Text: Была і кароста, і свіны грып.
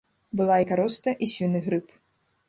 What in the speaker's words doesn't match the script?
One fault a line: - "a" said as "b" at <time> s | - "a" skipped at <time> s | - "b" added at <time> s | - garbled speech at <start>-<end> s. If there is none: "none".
none